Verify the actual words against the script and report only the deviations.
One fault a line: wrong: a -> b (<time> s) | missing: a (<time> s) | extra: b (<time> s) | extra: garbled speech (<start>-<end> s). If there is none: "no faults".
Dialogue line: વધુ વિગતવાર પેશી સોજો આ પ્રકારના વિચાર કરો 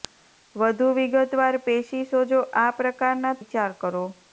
no faults